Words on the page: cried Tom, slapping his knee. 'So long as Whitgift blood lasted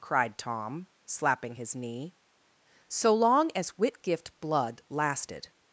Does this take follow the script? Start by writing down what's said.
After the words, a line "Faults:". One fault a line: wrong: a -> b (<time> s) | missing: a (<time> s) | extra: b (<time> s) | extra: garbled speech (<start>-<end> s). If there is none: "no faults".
cried Tom, slapping his knee. 'So long as Whitgift blood lasted
Faults:
no faults